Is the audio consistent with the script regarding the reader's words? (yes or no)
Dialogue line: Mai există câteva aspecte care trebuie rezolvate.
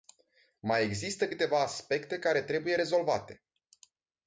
yes